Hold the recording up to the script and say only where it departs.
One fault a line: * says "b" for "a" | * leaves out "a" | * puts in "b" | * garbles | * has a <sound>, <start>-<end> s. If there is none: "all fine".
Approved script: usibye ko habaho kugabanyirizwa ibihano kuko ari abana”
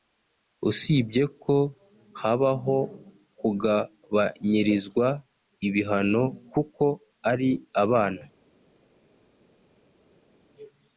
all fine